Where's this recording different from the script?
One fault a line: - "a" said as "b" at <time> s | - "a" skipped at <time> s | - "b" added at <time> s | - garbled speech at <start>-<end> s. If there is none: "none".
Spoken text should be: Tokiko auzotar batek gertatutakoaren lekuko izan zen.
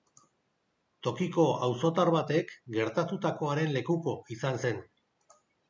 none